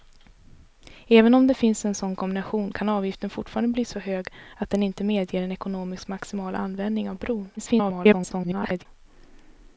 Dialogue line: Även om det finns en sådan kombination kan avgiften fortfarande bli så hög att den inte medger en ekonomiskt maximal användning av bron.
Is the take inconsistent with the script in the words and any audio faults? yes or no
yes